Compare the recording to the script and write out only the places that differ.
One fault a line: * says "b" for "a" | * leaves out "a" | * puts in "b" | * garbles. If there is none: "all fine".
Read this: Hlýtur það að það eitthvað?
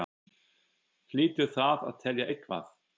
* says "telja" for "það"